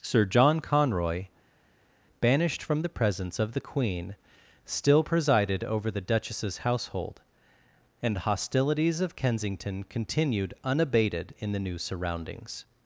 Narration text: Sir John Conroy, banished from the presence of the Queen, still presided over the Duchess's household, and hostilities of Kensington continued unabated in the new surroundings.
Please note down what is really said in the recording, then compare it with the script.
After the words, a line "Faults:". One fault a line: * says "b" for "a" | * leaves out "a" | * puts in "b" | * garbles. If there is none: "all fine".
Sir John Conroy, banished from the presence of the Queen, still presided over the Duchess's household, and hostilities of Kensington continued unabated in the new surroundings.
Faults:
all fine